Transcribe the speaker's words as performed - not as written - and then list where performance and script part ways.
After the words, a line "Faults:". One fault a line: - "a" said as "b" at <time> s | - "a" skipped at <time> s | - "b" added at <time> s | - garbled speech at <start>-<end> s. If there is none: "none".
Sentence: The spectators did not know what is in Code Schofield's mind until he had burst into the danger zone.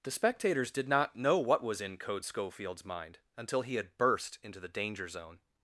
The spectators did not know what was in Code Schofield's mind until he had burst into the danger zone.
Faults:
- "is" said as "was" at 1.6 s